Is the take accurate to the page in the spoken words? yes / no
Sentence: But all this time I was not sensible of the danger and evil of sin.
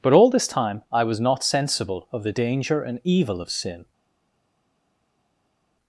yes